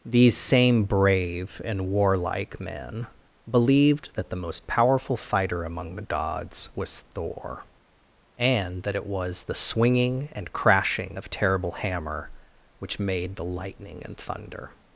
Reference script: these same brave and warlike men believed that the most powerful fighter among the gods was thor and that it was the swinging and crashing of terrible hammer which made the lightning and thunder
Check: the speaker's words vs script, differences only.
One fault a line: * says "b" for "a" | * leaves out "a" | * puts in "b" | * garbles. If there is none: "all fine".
all fine